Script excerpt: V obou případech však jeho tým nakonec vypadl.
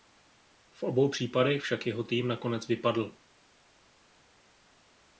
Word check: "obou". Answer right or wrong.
right